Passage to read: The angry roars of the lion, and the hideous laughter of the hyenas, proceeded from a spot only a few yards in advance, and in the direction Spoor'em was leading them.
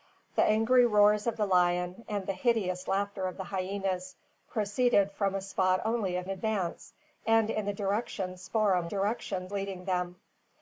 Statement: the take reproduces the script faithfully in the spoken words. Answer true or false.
false